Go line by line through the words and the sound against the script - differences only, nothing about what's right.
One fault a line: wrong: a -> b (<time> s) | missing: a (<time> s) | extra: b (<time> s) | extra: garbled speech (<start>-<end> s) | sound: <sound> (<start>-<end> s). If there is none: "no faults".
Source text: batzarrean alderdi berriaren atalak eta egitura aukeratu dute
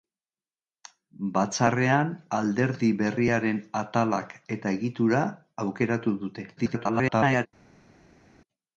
extra: garbled speech (6.6-7.5 s)